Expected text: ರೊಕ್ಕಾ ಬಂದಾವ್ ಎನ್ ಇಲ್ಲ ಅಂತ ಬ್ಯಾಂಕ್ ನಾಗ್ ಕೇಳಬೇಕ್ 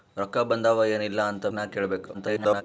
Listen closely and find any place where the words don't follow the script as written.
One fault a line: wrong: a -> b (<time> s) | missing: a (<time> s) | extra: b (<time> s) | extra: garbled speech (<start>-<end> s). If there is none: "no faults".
missing: ಬ್ಯಾಂಕ್ (1.5 s)
extra: garbled speech (2.1-2.6 s)